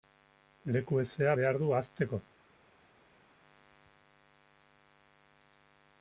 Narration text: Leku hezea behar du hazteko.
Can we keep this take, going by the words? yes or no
yes